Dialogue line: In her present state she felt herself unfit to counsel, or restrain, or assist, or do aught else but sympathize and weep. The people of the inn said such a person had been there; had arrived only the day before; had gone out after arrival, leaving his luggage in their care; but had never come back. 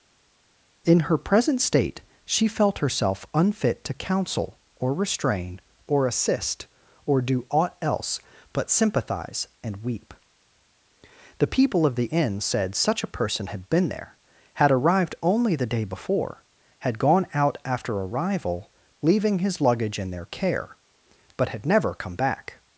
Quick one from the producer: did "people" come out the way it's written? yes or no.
yes